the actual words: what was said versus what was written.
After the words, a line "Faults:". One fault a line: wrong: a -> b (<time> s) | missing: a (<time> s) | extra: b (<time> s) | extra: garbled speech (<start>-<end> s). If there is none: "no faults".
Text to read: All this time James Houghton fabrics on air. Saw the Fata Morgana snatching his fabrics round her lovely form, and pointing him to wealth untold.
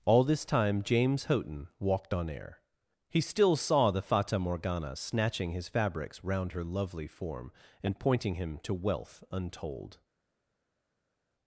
All this time James Houghton walked on air. He still saw the Fata Morgana snatching his fabrics round her lovely form, and pointing him to wealth untold.
Faults:
wrong: fabrics -> walked (1.8 s)
extra: He still (3.1 s)